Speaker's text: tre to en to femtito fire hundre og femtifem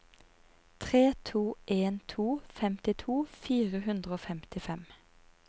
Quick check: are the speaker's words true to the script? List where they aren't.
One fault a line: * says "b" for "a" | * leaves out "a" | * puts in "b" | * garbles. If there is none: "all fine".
all fine